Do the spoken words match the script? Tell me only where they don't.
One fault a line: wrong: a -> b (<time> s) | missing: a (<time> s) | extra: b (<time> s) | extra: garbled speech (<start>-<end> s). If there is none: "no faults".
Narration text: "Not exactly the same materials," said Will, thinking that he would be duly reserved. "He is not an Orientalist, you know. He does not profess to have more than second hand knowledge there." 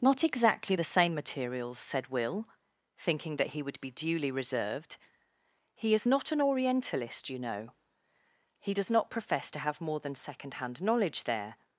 no faults